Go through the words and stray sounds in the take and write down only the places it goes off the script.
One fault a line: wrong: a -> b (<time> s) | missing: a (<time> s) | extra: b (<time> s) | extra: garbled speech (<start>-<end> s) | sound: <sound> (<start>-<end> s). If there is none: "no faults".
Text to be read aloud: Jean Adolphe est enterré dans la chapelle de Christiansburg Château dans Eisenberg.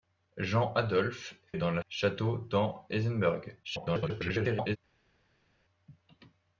missing: est enterré (1.4 s)
missing: chapelle de Christiansburg (1.8 s)
extra: garbled speech (3.6-4.8 s)